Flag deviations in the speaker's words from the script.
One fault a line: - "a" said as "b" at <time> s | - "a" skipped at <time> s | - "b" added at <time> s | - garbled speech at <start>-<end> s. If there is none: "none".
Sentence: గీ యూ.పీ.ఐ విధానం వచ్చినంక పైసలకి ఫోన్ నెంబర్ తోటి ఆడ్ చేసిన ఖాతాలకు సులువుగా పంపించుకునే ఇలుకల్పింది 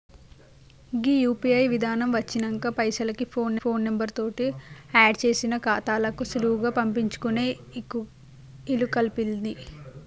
- "ఫోన్" added at 3.6 s